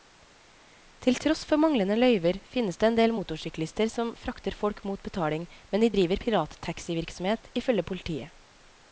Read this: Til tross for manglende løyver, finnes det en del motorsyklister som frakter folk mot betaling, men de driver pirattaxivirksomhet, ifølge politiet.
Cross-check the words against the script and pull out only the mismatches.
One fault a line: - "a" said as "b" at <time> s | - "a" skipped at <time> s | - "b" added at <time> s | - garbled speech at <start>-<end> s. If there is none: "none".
none